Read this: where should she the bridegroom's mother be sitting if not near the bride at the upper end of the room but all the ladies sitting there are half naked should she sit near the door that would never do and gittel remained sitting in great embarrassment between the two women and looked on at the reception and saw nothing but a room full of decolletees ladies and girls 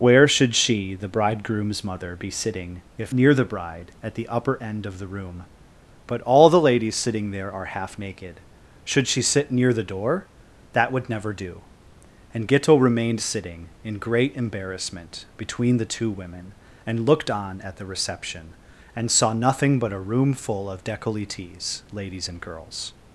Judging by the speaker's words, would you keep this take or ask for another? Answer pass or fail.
fail